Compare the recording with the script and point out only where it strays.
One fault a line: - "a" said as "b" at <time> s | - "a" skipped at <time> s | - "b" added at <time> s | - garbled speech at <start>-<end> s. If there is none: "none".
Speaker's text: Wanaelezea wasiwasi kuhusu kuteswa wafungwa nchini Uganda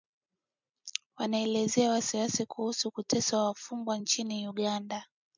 none